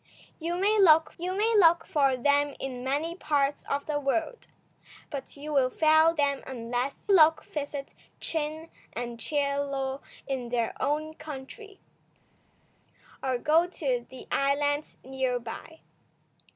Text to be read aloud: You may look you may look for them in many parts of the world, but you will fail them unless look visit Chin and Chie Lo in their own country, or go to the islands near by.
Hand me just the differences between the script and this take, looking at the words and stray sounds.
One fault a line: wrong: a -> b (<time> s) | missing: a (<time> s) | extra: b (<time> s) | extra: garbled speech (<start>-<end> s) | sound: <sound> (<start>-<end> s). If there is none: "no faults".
no faults